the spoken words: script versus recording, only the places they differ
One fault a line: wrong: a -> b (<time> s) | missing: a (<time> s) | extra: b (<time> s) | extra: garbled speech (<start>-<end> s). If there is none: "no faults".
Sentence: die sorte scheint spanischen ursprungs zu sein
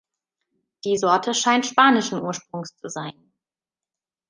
no faults